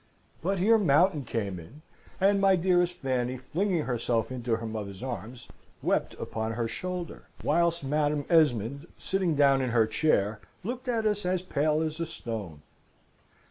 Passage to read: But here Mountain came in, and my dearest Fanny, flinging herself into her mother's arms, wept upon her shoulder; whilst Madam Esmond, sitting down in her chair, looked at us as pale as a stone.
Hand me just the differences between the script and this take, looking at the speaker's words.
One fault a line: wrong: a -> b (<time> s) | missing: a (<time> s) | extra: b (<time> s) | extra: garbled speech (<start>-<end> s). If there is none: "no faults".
no faults